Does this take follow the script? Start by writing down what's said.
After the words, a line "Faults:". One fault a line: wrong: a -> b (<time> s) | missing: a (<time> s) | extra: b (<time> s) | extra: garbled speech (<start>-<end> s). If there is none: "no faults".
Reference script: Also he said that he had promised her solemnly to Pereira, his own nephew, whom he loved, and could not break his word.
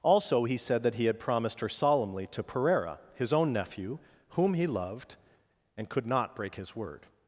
Also he said that he had promised her solemnly to Pereira, his own nephew, whom he loved, and could not break his word.
Faults:
no faults